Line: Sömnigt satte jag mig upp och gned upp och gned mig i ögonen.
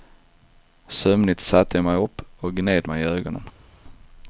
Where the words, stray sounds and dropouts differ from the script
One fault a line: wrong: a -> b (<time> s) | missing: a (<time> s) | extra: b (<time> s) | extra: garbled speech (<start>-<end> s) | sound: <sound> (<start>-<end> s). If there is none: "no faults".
missing: upp och gned (2.9 s)